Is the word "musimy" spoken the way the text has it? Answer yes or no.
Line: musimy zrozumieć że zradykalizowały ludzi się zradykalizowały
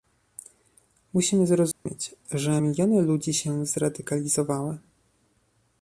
yes